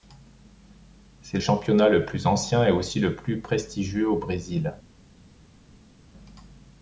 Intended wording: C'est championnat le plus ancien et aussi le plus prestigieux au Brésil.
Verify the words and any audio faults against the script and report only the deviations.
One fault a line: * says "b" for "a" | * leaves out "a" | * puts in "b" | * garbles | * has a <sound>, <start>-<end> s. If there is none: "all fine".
all fine